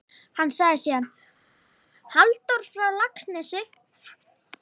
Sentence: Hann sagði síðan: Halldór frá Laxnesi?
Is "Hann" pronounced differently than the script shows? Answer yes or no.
no